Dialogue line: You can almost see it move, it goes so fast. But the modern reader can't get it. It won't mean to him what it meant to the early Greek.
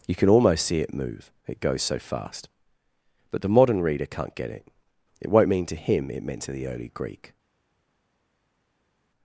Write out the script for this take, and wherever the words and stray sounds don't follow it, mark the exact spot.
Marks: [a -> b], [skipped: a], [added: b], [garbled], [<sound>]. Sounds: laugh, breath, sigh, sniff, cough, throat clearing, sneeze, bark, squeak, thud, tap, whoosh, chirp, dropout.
You can almost see it move, it goes so fast. But the modern reader can't get it. It won't mean to him [skipped: what] it meant to the early Greek.